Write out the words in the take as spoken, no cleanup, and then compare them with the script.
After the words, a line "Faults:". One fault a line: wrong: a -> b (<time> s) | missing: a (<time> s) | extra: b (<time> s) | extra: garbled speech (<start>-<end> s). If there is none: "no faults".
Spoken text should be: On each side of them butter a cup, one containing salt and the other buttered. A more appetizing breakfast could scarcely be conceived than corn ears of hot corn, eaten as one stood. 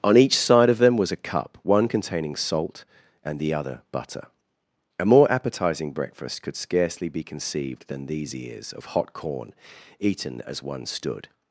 On each side of them was a cup, one containing salt and the other butter. A more appetizing breakfast could scarcely be conceived than these ears of hot corn, eaten as one stood.
Faults:
wrong: butter -> was (1.0 s)
wrong: buttered -> butter (3.9 s)
wrong: corn -> these (8.0 s)